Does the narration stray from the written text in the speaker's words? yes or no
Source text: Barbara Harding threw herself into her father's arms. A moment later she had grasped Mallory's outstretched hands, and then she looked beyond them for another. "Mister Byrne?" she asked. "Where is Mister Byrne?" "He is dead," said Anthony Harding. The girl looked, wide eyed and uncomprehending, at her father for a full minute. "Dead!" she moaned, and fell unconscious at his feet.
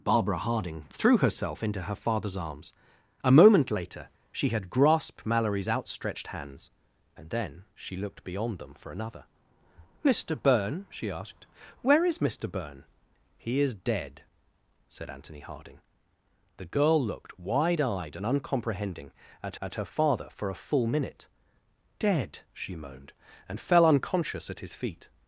yes